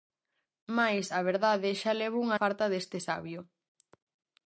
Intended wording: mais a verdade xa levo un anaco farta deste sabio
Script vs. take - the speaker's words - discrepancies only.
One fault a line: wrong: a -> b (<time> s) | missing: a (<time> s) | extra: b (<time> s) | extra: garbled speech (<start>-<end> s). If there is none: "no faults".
missing: anaco (2.3 s)